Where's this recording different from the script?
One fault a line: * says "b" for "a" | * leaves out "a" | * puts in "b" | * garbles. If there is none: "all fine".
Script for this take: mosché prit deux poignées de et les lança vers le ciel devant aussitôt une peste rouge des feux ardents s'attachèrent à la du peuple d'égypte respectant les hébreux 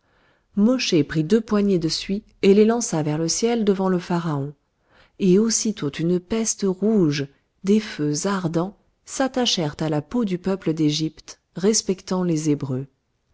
* puts in "suie"
* puts in "le pharaon et"
* puts in "peau"